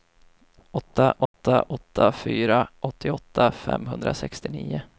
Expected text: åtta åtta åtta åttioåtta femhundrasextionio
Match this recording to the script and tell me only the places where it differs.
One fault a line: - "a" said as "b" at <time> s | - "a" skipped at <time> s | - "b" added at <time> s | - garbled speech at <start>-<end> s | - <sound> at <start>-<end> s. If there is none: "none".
- dropout at 1.3-1.3 s
- "fyra" added at 2.1 s